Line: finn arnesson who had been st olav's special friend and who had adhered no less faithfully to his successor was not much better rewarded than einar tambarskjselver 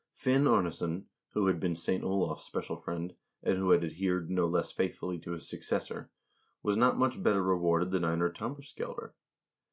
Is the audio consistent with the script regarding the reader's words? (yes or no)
yes